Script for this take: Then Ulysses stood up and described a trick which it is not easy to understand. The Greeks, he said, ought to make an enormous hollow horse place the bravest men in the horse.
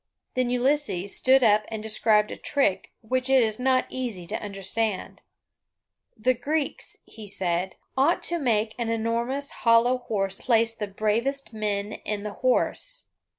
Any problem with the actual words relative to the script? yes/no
no